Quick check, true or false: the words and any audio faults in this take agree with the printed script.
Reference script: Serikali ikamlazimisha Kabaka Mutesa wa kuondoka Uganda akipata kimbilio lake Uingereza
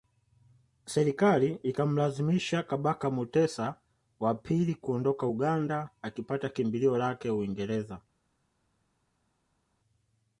false